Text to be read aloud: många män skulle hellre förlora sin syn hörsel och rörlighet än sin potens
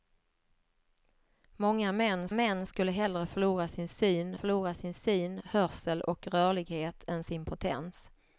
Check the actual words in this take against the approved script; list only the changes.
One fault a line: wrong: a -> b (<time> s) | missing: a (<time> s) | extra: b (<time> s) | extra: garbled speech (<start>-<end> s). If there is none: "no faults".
extra: män (2.3 s)
extra: förlora sin syn (4.3 s)